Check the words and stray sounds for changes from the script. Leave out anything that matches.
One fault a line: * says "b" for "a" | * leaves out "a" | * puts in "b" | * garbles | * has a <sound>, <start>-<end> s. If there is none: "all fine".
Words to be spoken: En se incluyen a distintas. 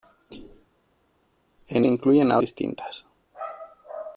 all fine